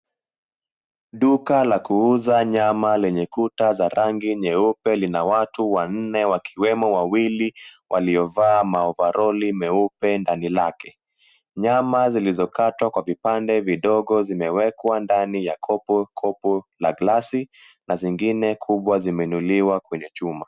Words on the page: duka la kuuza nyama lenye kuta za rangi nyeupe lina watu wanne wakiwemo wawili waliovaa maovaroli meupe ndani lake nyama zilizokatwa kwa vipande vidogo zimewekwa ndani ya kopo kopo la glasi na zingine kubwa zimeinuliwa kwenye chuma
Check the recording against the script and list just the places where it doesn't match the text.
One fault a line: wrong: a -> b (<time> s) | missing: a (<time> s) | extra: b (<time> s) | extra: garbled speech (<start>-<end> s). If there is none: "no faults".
no faults